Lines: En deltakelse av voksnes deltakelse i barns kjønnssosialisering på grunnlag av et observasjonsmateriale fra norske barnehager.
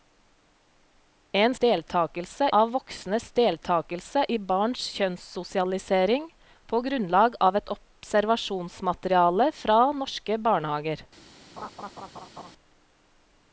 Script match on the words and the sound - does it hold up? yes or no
no